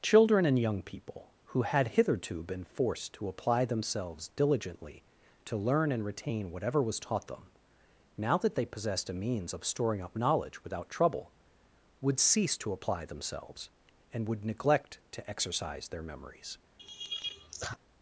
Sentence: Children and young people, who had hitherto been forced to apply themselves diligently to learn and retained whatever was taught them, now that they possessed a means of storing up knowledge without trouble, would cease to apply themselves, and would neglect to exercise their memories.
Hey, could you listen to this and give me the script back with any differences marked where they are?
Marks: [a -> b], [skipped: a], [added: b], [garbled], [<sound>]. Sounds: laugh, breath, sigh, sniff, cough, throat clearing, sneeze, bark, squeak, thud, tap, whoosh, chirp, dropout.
Children and young people, who had hitherto been forced to apply themselves diligently to learn and [retained -> retain] whatever was taught them, now that they possessed a means of storing up knowledge without trouble, would cease to apply themselves, and would neglect to exercise their memories. [laugh]